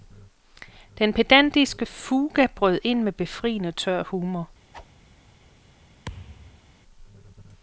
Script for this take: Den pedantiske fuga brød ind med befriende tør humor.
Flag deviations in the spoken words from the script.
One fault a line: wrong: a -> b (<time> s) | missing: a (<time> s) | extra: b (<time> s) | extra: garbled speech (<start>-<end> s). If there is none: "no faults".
no faults